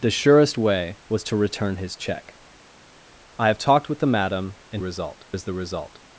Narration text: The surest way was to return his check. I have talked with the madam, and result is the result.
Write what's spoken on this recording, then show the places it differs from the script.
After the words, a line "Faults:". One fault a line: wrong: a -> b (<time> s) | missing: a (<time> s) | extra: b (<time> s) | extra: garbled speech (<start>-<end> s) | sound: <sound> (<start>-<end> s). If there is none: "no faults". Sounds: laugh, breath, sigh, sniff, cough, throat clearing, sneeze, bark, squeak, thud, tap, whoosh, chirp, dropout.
The surest way was to return his check. I have talked with the madam, and result is the result.
Faults:
no faults